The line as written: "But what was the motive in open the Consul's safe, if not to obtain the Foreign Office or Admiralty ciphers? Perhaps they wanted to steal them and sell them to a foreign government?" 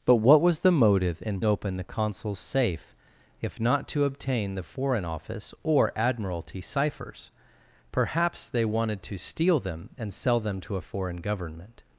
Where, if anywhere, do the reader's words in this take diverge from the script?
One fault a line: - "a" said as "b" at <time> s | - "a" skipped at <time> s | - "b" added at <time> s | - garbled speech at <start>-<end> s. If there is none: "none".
none